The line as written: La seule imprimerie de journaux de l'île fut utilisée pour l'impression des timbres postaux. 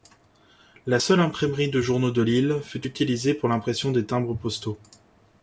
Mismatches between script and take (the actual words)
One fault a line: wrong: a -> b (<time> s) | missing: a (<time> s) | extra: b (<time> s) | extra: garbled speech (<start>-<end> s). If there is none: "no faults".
no faults